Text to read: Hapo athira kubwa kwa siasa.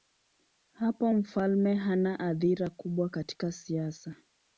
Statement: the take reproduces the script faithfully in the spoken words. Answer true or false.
false